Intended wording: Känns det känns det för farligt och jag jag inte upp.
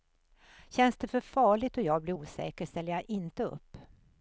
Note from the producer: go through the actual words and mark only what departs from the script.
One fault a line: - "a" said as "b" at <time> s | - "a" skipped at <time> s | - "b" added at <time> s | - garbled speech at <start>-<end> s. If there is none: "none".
- "känns det" skipped at 1.1 s
- "blir osäker ställer" added at 2.0 s